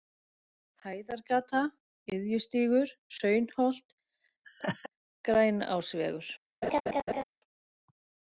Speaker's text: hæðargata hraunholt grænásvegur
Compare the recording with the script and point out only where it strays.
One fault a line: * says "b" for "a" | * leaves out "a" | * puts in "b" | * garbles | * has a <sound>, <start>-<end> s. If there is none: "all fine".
* puts in "iðjustígur"
* has a laugh, 4.4-4.9 s
* has a laugh, 6.6-7.2 s